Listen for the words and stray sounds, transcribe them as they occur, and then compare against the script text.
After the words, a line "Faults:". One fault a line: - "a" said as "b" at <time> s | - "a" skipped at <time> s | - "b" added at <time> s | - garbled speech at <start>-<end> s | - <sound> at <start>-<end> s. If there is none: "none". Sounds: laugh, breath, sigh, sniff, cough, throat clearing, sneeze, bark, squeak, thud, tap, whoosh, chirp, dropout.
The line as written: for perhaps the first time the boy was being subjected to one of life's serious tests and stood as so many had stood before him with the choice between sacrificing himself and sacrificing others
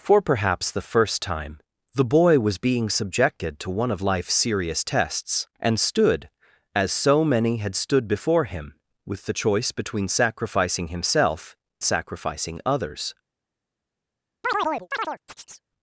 for perhaps the first time the boy was being subjected to one of life's serious tests and stood as so many had stood before him with the choice between sacrificing himself sacrificing others
Faults:
- "and" skipped at 11.6 s
- chirp at 14.4-15.6 s